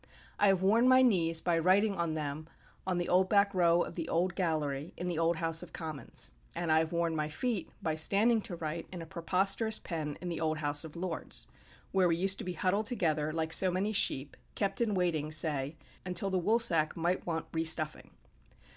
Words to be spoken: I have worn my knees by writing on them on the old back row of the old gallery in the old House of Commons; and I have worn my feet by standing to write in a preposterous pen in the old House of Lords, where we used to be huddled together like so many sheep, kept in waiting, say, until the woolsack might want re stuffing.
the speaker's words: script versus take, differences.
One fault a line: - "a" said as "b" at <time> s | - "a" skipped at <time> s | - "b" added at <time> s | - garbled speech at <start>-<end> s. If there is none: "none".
none